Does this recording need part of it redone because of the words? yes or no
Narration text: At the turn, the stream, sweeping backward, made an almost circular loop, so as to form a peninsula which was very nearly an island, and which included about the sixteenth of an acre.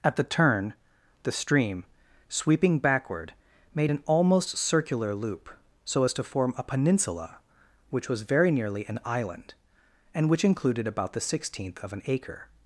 no